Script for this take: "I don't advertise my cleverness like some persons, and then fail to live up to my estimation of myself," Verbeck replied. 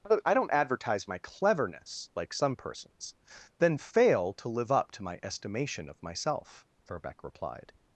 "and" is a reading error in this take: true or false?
true